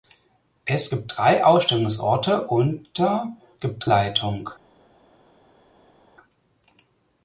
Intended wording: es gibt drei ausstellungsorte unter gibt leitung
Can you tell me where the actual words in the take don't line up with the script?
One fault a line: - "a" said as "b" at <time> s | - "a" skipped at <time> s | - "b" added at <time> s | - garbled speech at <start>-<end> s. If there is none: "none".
none